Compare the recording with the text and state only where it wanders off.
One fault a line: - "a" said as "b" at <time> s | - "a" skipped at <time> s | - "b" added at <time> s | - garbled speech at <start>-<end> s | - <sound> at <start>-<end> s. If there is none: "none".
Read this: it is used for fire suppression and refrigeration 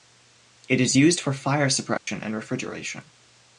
- dropout at 2.0-2.1 s